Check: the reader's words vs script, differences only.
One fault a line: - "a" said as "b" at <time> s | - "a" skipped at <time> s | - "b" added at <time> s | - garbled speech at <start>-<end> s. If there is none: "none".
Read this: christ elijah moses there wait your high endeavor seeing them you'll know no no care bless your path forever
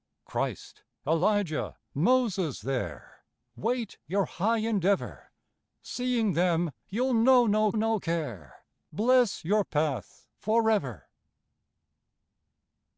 none